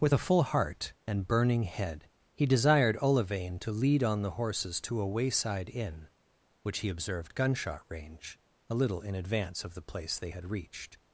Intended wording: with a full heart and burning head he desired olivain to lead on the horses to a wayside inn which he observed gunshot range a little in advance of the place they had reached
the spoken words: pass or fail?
pass